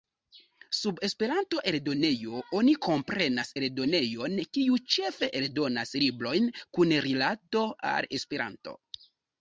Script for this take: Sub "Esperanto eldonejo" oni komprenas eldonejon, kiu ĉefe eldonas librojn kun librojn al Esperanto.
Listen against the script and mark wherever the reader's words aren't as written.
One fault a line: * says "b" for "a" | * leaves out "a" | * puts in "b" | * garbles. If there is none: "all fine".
* says "rilato" for "librojn"